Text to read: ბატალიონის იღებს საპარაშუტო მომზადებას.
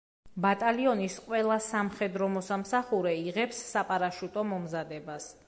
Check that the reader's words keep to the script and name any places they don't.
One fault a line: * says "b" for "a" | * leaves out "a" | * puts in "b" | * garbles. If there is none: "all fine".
* puts in "ყველა სამხედრო მოსამსახურე"